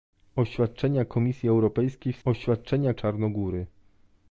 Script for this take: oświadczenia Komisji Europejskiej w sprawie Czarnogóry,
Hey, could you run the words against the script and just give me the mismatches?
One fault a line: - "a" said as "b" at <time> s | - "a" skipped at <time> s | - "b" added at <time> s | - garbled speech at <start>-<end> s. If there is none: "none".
- "sprawie" said as "oświadczenia" at 2.2 s